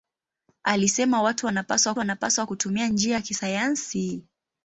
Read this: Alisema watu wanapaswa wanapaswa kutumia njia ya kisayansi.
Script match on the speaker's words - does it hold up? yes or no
yes